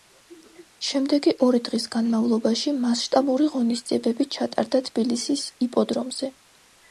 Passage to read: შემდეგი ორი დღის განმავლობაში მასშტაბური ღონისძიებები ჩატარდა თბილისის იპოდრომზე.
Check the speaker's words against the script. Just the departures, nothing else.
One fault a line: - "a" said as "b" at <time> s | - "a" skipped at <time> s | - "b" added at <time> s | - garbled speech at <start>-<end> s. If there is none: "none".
none